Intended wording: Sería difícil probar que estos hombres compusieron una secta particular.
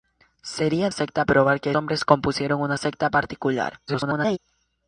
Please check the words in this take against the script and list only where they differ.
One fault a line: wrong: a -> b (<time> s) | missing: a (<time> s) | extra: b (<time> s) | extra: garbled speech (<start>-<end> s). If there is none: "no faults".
wrong: difícil -> secta (0.9 s)
missing: estos (1.7 s)
extra: garbled speech (3.9-4.4 s)